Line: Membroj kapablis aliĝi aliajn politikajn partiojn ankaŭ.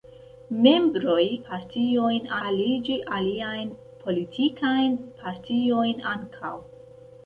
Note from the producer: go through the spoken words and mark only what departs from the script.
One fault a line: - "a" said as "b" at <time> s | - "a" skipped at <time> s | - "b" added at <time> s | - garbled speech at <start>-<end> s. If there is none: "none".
- "kapablis" said as "partiojn" at 1.5 s